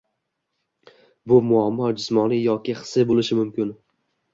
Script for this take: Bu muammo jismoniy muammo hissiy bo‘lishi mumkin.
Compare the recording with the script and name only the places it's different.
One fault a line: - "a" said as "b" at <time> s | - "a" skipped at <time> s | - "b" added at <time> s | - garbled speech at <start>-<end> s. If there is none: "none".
- "muammo" said as "yoki" at 2.5 s